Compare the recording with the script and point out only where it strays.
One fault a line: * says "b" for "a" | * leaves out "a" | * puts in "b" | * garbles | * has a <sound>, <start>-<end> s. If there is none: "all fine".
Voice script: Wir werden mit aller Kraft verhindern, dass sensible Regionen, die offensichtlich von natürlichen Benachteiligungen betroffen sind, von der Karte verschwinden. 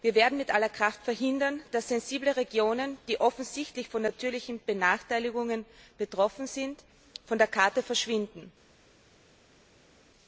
all fine